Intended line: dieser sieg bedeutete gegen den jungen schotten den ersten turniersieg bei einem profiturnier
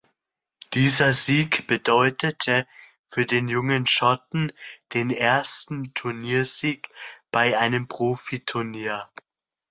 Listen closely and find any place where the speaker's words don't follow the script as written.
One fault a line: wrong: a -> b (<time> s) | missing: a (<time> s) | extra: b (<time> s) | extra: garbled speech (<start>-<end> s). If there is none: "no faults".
wrong: gegen -> für (3.1 s)